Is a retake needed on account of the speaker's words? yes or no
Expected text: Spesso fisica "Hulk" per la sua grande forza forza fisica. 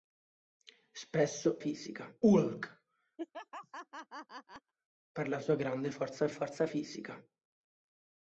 no